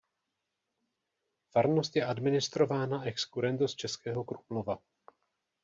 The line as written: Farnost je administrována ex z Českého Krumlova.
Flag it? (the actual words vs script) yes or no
yes